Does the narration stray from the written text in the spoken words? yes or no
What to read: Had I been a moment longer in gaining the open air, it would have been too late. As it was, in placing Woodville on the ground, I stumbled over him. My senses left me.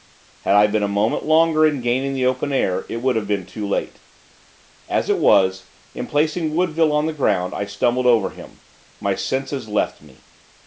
no